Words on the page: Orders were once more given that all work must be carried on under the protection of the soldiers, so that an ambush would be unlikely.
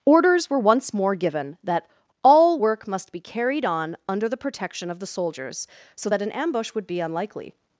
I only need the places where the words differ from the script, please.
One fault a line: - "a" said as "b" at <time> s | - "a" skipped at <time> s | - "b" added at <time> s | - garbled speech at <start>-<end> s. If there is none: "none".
none